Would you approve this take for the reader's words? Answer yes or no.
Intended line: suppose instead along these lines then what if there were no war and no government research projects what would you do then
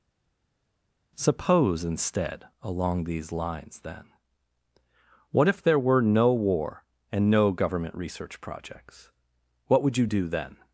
yes